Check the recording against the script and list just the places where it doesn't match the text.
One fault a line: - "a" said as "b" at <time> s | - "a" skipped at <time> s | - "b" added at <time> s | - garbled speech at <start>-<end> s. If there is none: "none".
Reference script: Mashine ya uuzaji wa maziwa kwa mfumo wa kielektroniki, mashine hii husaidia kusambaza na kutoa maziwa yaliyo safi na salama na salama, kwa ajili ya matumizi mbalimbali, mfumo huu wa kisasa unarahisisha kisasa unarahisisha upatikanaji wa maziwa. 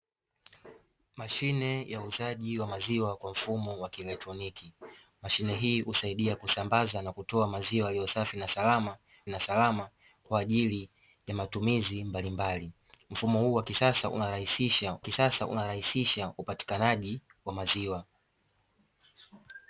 none